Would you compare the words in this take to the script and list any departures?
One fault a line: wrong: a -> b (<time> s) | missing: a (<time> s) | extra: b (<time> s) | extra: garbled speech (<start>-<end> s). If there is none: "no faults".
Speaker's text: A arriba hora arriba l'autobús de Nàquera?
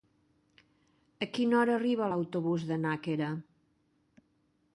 wrong: arriba -> quina (1.4 s)